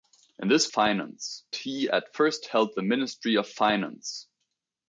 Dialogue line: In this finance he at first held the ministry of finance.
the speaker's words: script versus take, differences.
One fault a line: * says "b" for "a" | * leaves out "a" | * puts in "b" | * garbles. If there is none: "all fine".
all fine